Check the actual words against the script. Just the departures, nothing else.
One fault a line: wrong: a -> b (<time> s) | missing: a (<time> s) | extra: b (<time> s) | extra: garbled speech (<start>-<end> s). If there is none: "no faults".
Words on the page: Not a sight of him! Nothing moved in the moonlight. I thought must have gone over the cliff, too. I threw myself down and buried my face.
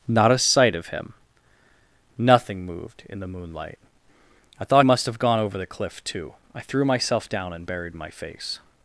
no faults